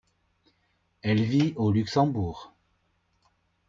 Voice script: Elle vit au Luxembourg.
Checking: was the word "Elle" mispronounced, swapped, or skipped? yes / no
no